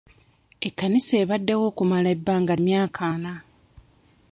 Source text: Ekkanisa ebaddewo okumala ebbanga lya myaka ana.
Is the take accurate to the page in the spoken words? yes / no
no